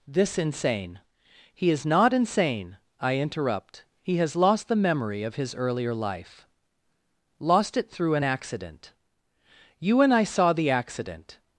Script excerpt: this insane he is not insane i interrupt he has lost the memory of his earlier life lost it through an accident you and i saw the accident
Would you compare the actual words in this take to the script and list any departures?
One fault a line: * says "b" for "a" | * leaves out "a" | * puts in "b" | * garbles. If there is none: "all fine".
all fine